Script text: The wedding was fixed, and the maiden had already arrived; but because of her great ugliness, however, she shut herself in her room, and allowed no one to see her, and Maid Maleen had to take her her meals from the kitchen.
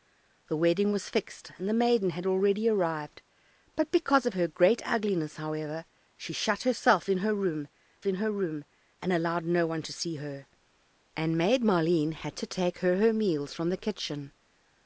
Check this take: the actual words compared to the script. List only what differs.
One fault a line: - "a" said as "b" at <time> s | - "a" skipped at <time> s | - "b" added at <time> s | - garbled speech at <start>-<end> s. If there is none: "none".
- "in her room" added at 8.0 s